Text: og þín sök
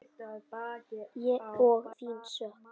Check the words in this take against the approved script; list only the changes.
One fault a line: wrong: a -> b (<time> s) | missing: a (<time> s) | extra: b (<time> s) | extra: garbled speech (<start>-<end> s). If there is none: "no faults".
no faults